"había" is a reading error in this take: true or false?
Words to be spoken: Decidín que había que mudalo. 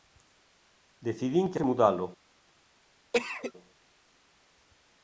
true